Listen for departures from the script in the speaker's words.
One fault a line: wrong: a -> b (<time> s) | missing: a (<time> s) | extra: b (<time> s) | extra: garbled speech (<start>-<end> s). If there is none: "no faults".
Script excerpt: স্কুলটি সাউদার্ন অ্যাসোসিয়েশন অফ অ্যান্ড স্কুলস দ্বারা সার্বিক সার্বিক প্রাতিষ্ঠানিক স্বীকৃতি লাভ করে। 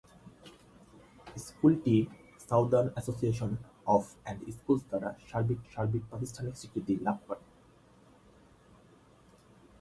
no faults